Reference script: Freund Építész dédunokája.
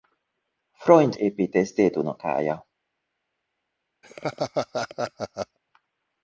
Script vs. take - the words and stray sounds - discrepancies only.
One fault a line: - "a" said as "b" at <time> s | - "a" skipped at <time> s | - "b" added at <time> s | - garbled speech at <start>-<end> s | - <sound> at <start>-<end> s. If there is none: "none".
- laugh at 4.0-5.6 s